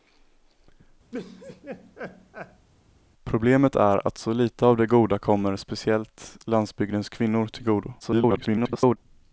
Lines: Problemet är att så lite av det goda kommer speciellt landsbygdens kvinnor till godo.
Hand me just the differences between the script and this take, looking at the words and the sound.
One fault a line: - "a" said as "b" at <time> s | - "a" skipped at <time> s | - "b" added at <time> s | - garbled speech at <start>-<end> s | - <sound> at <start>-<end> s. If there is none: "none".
- laugh at 1.1-2.7 s
- garbled speech at 8.0-9.0 s